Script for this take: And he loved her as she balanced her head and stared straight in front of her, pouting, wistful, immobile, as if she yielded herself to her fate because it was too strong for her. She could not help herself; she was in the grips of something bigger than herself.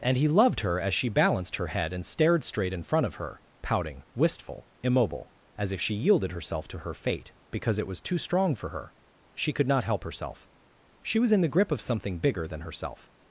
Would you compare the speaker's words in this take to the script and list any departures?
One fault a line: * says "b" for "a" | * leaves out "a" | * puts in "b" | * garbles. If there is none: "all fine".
* says "grip" for "grips"